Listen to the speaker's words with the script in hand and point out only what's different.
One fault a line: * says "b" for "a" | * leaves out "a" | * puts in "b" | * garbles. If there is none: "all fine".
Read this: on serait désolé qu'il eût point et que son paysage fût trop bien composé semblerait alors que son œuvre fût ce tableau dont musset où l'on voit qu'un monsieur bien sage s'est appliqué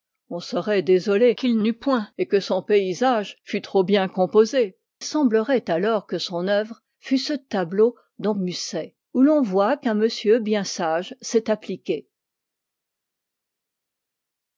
all fine